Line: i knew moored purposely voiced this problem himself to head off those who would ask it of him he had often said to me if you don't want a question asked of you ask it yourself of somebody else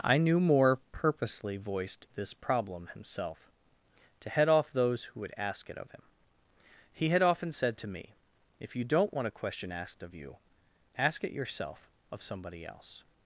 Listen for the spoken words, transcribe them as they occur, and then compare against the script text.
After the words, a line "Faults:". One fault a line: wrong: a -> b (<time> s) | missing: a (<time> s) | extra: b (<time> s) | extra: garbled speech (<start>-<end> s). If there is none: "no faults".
i knew moore purposely voiced this problem himself to head off those who would ask it of him he had often said to me if you don't want a question asked of you ask it yourself of somebody else
Faults:
wrong: moored -> moore (0.4 s)